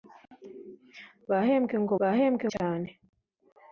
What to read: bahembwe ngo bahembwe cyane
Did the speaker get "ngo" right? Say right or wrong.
right